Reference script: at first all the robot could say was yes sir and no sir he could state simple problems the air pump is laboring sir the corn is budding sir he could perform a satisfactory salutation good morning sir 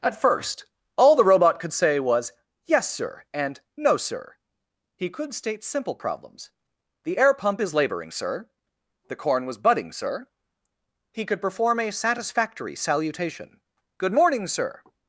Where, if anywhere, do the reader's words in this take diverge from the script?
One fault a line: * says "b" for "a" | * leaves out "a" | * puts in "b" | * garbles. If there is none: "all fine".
* says "was" for "is"